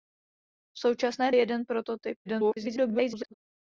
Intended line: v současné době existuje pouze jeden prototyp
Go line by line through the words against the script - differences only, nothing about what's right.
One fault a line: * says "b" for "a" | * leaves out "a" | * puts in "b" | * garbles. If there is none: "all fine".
* leaves out "době existuje pouze"
* garbles